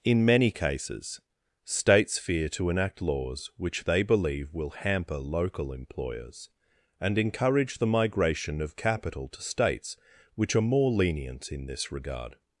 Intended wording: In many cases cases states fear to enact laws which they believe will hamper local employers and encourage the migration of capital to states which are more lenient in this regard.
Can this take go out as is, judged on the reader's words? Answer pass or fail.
fail